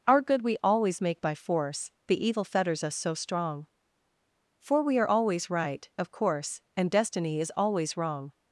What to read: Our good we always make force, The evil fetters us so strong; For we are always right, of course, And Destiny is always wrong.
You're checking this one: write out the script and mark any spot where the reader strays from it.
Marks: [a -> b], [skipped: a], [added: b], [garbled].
Our good we always make [added: by] force, The evil fetters us so strong; For we are always right, of course, And Destiny is always wrong.